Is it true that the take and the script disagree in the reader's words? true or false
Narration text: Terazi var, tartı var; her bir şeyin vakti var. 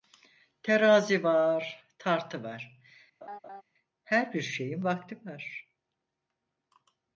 false